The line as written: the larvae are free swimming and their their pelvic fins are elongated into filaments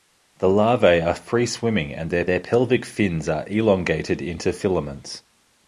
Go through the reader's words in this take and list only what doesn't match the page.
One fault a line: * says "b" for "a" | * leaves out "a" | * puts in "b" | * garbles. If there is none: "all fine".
all fine